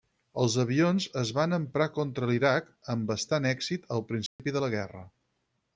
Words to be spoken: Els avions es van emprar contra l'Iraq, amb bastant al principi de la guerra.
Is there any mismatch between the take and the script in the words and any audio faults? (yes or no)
yes